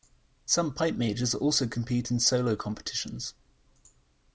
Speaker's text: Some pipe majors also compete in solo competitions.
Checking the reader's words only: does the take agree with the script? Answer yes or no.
yes